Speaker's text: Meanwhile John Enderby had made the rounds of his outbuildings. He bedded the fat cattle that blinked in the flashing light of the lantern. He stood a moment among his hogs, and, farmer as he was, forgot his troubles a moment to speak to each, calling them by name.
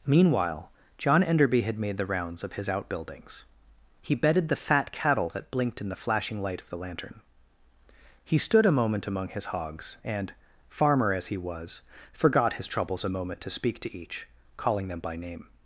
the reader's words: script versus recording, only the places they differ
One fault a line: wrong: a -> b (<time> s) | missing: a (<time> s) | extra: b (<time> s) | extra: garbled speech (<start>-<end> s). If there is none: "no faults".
no faults